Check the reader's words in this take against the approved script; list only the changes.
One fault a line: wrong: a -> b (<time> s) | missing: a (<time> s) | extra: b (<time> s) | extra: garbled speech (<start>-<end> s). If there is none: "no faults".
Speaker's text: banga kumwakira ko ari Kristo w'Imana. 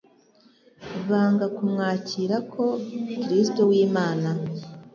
missing: ari (2.6 s)